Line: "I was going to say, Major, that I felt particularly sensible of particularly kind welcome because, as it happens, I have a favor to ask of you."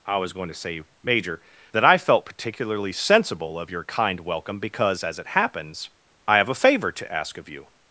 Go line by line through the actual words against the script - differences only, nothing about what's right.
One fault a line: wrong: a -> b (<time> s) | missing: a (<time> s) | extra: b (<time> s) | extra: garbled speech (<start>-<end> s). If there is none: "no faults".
wrong: particularly -> your (3.7 s)